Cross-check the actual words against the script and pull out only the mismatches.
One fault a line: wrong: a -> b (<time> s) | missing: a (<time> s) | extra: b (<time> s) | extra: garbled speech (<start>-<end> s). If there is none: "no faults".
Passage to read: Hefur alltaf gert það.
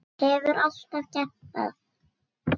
no faults